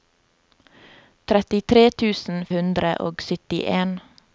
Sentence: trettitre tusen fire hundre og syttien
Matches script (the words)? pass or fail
fail